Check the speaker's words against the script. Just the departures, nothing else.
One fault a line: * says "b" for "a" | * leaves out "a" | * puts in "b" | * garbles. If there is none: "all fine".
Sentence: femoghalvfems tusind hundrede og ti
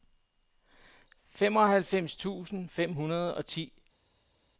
* puts in "fem"